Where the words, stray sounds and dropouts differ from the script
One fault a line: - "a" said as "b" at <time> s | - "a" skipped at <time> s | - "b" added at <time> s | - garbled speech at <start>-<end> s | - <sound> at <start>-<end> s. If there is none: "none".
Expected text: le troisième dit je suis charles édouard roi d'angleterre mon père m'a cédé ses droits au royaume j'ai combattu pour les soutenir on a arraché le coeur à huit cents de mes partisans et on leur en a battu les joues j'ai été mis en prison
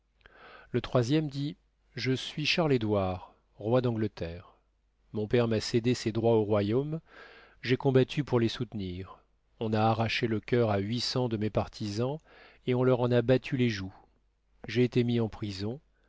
none